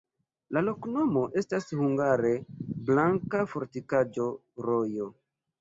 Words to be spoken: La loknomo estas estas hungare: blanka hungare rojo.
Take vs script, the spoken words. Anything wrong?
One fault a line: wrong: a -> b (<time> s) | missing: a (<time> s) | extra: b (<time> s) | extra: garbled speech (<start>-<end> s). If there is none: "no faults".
missing: estas (1.7 s)
wrong: hungare -> fortikaĵo (3.5 s)